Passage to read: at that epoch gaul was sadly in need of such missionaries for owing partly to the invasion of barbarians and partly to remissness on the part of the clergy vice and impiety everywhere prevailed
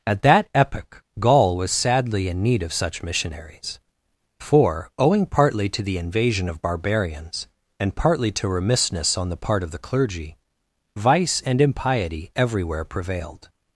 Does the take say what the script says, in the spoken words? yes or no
yes